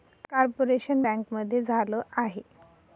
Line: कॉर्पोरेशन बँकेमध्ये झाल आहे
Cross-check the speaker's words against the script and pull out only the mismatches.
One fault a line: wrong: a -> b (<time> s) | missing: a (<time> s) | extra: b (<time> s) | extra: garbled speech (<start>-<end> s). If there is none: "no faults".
no faults